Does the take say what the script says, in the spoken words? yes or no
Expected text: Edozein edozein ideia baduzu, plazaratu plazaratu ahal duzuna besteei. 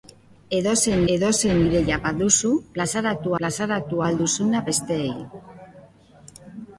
yes